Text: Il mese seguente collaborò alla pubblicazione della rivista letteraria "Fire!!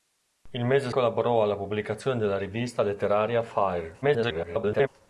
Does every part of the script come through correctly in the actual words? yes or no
no